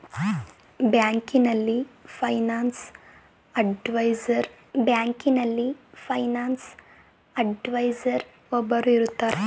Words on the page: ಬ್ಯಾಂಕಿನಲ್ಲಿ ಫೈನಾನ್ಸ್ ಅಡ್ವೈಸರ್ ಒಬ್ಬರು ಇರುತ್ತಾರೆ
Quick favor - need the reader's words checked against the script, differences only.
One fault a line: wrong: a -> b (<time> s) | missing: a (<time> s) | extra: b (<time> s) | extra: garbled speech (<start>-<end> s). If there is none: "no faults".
extra: ಬ್ಯಾಂಕಿನಲ್ಲಿ ಫೈನಾನ್ಸ್ ಅಡ್ವೈಸರ್ (4.7 s)